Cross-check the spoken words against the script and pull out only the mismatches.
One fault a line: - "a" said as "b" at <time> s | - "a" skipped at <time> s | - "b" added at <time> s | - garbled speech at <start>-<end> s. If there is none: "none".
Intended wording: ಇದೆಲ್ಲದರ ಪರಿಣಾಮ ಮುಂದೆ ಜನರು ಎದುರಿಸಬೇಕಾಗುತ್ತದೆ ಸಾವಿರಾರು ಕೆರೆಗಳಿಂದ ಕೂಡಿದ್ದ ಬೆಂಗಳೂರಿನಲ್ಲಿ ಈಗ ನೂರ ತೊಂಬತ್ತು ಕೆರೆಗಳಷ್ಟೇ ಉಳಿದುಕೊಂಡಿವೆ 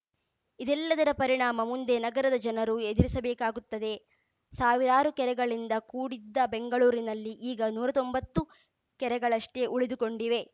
- "ನಗರದ" added at 2.0 s